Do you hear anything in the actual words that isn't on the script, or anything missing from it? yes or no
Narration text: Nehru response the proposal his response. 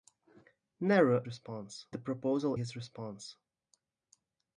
no